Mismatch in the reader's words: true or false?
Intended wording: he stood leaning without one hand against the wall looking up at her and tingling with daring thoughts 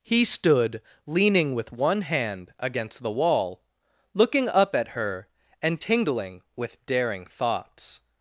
true